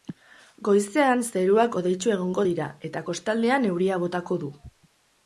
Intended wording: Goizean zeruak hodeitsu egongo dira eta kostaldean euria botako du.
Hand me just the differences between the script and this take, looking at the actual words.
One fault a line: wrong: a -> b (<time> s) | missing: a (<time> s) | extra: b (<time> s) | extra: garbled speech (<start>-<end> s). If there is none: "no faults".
no faults